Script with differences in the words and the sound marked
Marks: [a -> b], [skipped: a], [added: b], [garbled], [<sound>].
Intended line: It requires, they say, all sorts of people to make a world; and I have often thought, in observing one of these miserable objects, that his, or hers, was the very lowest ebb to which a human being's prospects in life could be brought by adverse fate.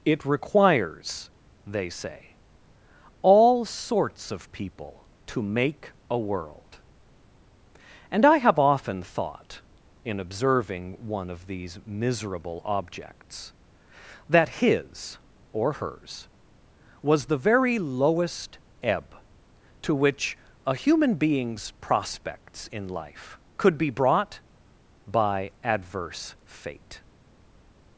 It requires, they say, all sorts of people to make a world; and I have often thought, in observing one of these miserable objects, that his, or hers, was the very lowest ebb to which a human being's prospects in life could be brought by adverse fate.